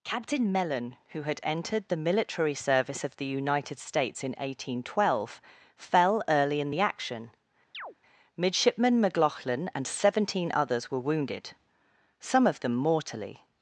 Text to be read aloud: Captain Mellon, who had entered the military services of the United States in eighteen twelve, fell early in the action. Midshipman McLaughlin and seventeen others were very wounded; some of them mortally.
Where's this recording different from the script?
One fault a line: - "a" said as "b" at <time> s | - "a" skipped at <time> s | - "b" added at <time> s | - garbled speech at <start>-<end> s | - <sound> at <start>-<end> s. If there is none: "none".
- "services" said as "service" at 2.5 s
- chirp at 7.7-8.0 s
- "very" skipped at 11.1 s